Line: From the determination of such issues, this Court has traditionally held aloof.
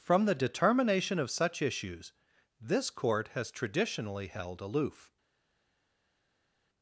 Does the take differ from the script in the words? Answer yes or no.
no